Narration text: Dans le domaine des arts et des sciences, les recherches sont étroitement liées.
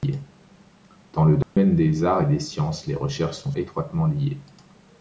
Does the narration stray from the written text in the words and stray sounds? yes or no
yes